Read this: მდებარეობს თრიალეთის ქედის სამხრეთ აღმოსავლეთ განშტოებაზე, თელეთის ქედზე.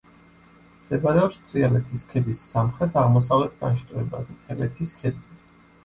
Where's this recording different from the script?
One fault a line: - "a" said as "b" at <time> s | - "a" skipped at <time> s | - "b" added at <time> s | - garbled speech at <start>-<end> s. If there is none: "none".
none